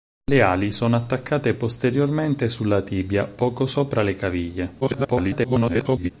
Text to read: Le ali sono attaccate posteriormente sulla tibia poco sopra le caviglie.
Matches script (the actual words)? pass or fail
fail